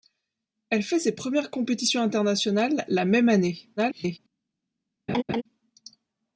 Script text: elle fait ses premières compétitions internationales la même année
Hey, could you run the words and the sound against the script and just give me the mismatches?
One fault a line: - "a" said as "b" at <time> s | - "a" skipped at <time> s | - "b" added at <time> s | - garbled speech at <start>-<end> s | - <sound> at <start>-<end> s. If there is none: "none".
- garbled speech at 3.8-4.2 s
- laugh at 5.1-5.4 s